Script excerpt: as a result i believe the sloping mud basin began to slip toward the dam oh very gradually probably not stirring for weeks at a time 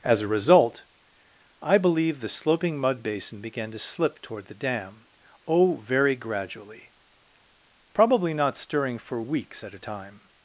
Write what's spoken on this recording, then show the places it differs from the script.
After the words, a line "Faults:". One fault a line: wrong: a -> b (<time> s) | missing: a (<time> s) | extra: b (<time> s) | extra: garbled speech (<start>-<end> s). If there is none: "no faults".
as a result i believe the sloping mud basin began to slip toward the dam oh very gradually probably not stirring for weeks at a time
Faults:
no faults